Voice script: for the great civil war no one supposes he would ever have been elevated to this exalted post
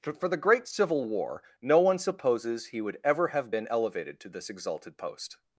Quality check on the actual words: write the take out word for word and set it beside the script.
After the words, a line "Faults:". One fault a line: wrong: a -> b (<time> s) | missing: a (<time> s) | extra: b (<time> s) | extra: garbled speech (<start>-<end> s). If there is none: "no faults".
for the great civil war no one supposes he would ever have been elevated to this exalted post
Faults:
no faults